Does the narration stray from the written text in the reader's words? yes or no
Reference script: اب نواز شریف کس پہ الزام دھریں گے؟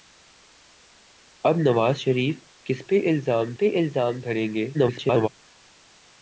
yes